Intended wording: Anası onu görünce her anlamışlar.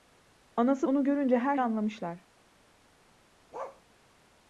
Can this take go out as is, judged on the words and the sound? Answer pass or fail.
fail